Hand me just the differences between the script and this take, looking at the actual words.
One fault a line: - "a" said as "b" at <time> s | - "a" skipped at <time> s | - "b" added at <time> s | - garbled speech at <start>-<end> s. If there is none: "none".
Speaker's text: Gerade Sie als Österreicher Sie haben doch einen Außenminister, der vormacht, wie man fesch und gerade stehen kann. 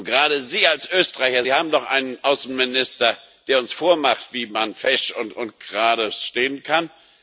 - "uns" added at 3.6 s